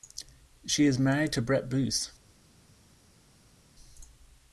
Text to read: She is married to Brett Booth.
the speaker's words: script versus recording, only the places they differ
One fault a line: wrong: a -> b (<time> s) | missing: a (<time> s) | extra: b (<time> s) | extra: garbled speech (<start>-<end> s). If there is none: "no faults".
no faults